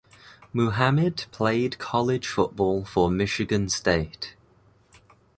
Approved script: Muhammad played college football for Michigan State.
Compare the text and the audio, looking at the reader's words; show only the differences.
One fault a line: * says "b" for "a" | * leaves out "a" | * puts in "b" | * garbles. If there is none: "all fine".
all fine